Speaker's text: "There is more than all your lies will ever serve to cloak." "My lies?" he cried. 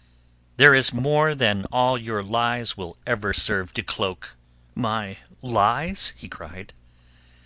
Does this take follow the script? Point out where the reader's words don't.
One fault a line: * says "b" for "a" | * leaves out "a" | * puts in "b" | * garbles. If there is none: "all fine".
all fine